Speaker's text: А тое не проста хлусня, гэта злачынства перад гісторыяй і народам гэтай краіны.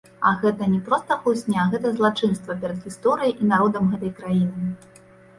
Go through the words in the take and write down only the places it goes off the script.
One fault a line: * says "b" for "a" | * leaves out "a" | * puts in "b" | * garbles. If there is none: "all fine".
* says "гэта" for "тое"